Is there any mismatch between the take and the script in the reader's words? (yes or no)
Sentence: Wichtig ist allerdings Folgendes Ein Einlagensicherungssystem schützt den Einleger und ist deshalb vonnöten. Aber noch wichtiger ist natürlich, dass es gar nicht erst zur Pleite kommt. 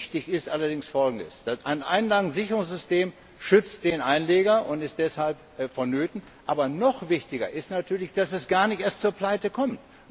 no